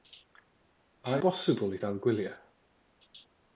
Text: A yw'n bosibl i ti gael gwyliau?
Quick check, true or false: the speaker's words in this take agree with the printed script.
false